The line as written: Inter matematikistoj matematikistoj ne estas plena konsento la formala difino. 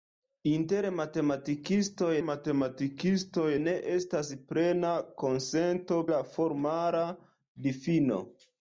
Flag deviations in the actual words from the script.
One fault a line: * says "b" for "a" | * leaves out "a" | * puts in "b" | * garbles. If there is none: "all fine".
all fine